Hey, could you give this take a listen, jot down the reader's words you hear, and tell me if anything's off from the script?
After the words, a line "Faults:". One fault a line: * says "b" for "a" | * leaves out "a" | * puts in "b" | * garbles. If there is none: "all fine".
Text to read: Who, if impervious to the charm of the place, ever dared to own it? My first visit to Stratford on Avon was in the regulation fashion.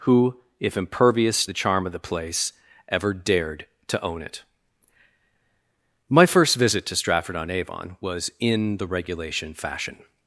Who, if impervious the charm of the place, ever dared to own it? My first visit to Stratford on Avon was in the regulation fashion.
Faults:
* leaves out "to"